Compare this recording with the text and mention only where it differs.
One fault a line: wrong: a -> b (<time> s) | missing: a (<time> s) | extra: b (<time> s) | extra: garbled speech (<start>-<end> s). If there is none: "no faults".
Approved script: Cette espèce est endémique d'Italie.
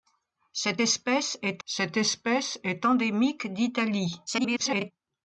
extra: cette espèce est (1.6 s)
extra: garbled speech (4.3-4.9 s)